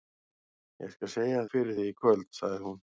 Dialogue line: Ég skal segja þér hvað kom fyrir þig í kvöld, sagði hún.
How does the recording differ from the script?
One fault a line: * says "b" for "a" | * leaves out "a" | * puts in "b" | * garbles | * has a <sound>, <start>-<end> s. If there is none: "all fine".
* leaves out "þér hvað kom"